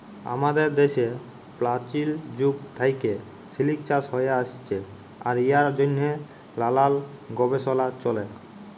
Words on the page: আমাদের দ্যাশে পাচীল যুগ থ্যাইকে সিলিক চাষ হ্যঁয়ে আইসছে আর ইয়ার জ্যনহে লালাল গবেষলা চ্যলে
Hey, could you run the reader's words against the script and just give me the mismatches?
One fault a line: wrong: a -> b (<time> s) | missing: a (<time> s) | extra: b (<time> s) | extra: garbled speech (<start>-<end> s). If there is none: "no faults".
no faults